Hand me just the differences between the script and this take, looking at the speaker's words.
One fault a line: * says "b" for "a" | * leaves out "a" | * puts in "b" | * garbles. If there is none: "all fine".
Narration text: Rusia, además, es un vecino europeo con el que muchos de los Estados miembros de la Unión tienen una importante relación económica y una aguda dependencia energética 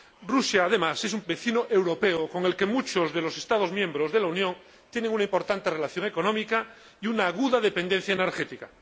all fine